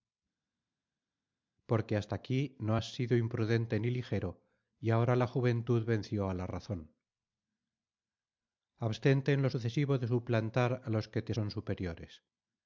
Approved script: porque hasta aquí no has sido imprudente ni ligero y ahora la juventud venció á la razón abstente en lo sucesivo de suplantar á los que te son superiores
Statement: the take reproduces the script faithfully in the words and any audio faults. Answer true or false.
true